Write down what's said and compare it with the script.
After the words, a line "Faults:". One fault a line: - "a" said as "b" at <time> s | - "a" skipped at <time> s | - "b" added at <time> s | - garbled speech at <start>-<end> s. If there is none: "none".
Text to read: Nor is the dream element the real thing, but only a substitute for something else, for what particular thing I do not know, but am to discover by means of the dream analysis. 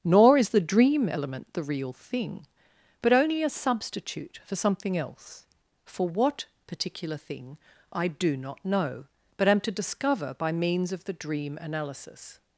Nor is the dream element the real thing, but only a substitute for something else, for what particular thing I do not know, but am to discover by means of the dream analysis.
Faults:
none